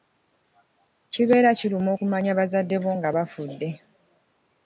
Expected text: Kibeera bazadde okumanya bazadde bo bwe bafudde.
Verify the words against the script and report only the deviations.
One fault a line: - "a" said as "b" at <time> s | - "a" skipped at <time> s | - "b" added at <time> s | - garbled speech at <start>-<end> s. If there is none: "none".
- "bazadde" said as "kiruma" at 1.6 s
- "bwe" said as "nga" at 3.0 s